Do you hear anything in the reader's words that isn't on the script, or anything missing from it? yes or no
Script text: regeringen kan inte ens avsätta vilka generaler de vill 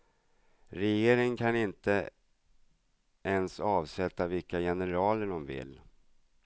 no